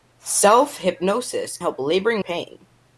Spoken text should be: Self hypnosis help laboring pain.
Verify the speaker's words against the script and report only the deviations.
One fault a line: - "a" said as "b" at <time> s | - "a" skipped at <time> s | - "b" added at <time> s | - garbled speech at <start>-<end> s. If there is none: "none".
none